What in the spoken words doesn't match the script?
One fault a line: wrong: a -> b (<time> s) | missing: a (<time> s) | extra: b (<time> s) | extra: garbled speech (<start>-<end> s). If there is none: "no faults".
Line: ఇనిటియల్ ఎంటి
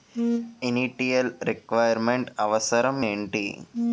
extra: రిక్వైర్ మెంట్ అవసరం (1.4 s)